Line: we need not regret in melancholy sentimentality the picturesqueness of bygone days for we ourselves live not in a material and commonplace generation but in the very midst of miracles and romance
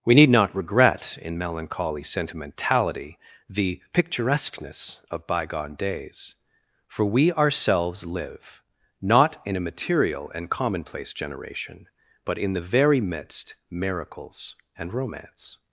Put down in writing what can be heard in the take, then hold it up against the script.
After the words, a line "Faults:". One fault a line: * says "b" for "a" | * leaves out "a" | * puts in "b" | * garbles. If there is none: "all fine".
we need not regret in melancholy sentimentality the picturesqueness of bygone days for we ourselves live not in a material and commonplace generation but in the very midst miracles and romance
Faults:
* leaves out "of"